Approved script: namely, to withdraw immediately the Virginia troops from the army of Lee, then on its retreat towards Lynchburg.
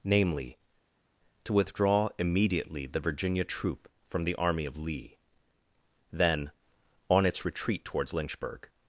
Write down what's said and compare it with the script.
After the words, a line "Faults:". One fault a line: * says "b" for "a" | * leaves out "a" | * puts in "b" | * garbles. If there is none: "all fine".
namely, to withdraw immediately the Virginia troop from the army of Lee, then on its retreat towards Lynchburg.
Faults:
* says "troop" for "troops"